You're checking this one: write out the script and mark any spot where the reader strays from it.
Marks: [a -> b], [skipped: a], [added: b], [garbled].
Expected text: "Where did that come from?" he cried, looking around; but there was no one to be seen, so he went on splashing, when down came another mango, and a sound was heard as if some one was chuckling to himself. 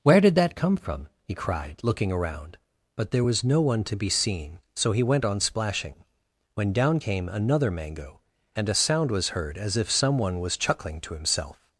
"Where did that come from?" he cried, looking around; but there was no one to be seen, so he went on splashing, when down came another mango, and a sound was heard as if some one was chuckling to himself.